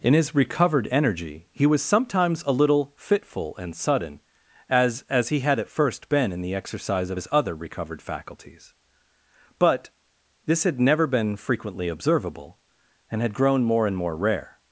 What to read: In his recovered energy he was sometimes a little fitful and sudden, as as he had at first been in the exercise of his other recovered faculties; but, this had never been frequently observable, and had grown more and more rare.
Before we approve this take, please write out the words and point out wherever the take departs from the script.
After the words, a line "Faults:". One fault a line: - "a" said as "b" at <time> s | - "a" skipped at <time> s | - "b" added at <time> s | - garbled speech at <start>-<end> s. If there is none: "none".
In his recovered energy he was sometimes a little fitful and sudden, as as he had at first been in the exercise of his other recovered faculties; but, this had never been frequently observable, and had grown more and more rare.
Faults:
none